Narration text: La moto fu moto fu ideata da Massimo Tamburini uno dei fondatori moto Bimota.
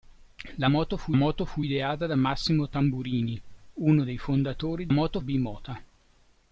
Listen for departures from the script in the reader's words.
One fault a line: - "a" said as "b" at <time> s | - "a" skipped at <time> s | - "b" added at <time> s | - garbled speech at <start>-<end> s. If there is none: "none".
none